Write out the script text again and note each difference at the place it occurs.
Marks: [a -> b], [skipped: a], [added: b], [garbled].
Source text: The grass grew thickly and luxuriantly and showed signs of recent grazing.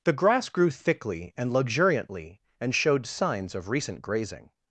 The grass grew thickly and luxuriantly and showed signs of recent grazing.